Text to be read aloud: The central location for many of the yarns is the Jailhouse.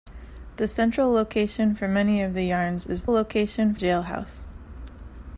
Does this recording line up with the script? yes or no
no